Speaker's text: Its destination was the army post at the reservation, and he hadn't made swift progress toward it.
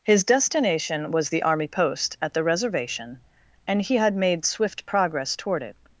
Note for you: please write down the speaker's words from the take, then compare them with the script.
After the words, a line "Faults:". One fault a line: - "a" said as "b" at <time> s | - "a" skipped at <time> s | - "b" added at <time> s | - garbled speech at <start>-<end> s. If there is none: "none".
His destination was the army post at the reservation, and he had made swift progress toward it.
Faults:
- "Its" said as "His" at 0.0 s
- "hadn't" said as "had" at 4.0 s